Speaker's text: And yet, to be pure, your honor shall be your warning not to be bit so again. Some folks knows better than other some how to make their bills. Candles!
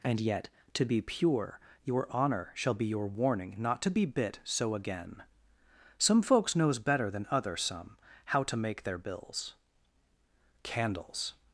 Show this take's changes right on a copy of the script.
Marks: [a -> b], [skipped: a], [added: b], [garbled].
And yet, to be pure, your honor shall be your warning not to be bit so again. Some folks knows better than other some how to make their bills. Candles!